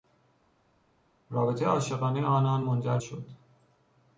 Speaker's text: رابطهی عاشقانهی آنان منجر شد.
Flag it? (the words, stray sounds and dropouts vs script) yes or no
no